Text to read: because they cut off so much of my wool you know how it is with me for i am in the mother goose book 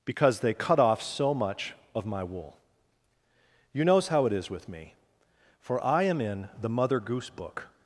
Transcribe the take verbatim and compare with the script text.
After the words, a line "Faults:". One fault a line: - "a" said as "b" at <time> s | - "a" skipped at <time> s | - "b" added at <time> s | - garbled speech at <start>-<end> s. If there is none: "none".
because they cut off so much of my wool you knows how it is with me for i am in the mother goose book
Faults:
- "know" said as "knows" at 3.9 s